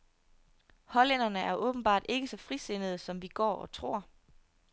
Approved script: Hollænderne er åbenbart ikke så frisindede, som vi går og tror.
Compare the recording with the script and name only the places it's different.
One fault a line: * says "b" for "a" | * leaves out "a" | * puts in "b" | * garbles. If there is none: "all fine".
all fine